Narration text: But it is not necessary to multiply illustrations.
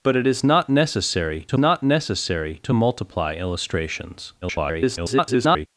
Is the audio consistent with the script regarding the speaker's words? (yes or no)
no